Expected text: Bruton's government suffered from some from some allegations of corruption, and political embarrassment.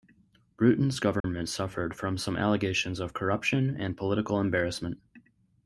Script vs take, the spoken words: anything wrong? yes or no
yes